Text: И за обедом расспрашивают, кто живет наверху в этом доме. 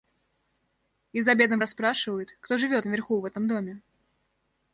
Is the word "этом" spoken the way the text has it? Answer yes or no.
yes